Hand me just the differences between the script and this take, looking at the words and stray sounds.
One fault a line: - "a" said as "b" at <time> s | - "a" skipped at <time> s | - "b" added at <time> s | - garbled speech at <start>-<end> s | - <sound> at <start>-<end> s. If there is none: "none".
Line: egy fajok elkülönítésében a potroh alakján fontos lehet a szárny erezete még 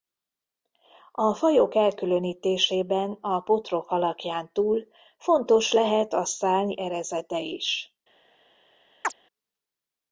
- "egy" said as "a" at 1.1 s
- "túl" added at 4.5 s
- "még" said as "is" at 7.4 s
- chirp at 9.0-9.1 s